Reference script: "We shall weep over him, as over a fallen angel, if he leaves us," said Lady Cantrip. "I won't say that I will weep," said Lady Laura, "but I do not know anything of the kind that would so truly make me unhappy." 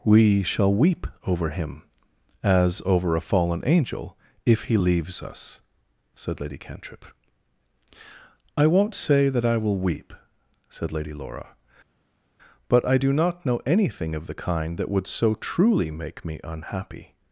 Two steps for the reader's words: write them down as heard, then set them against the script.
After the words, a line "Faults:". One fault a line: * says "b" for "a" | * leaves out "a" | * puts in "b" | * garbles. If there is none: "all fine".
"We shall weep over him, as over a fallen angel, if he leaves us," said Lady Cantrip. "I won't say that I will weep," said Lady Laura, "but I do not know anything of the kind that would so truly make me unhappy."
Faults:
all fine